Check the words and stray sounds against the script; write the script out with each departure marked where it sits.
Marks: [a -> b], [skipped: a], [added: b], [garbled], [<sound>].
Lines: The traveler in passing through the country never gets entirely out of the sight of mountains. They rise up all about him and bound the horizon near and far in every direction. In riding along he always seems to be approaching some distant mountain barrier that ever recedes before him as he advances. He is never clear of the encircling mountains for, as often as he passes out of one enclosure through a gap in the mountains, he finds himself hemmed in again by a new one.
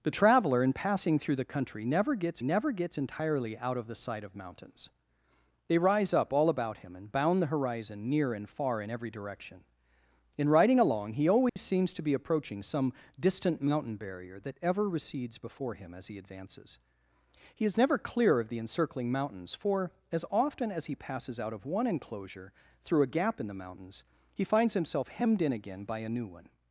The traveler in passing through the country never gets [added: never gets] entirely out of the sight of mountains. They rise up all about him and bound the horizon near and far in every direction. In riding along he always [dropout] seems to be approaching some distant mountain barrier that ever recedes before him as he advances. He is never clear of the encircling mountains for, as often as he passes out of one enclosure through a gap in the mountains, he finds himself hemmed in again by a new one.